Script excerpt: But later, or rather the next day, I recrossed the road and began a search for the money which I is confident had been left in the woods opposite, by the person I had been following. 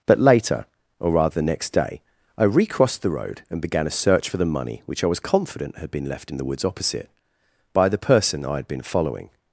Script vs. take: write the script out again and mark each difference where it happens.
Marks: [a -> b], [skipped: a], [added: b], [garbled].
But later, or rather the next day, I recrossed the road and began a search for the money which I [is -> was] confident had been left in the woods opposite, by the person I had been following.